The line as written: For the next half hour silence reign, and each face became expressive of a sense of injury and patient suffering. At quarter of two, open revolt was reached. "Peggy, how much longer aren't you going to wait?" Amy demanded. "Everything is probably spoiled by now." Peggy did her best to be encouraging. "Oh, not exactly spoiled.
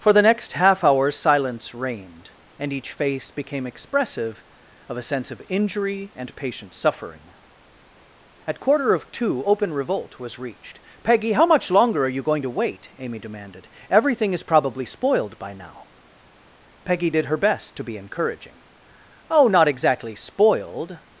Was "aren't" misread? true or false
true